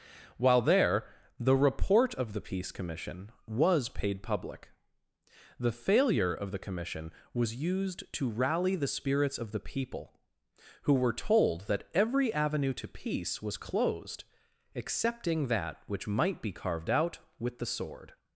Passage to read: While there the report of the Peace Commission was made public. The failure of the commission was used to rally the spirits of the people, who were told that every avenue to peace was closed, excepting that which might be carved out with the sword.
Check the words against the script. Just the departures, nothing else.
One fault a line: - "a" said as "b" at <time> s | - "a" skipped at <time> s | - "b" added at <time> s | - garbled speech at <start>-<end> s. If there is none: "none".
- "made" said as "paid" at 3.9 s